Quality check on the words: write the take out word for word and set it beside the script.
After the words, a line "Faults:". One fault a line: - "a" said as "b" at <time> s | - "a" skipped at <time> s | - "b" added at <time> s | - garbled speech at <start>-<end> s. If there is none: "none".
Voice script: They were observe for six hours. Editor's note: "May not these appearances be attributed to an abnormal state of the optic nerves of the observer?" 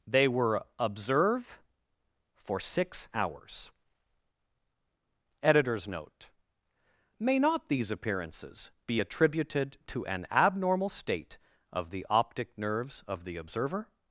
They were observe for six hours. Editor's note: "May not these appearances be attributed to an abnormal state of the optic nerves of the observer?"
Faults:
none